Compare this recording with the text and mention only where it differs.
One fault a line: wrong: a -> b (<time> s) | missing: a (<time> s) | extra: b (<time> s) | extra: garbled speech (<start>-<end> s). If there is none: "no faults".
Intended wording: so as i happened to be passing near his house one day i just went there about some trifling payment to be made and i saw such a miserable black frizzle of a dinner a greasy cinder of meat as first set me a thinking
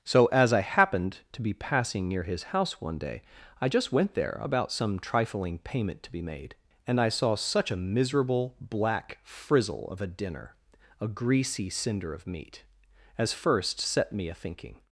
no faults